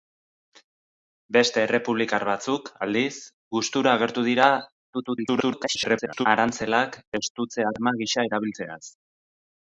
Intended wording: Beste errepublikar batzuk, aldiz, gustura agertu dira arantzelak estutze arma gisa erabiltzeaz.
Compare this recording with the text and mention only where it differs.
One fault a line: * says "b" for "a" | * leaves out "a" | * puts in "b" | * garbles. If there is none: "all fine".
* garbles